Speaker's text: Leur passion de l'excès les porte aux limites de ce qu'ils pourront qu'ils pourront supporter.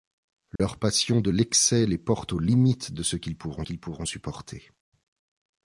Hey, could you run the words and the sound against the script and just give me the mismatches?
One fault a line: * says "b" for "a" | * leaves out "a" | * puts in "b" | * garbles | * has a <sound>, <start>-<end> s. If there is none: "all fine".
* has a dropout, 0.6-0.6 s